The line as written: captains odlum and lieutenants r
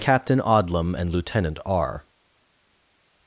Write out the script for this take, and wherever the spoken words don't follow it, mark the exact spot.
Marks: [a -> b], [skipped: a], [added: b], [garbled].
[captains -> captain] odlum and [lieutenants -> lieutenant] r